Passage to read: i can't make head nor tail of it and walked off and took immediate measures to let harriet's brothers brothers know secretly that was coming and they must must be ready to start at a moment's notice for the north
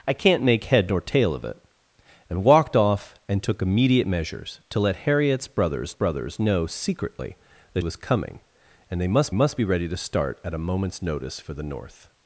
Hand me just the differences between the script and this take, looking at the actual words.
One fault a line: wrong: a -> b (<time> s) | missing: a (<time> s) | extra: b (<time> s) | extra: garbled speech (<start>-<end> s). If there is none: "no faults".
no faults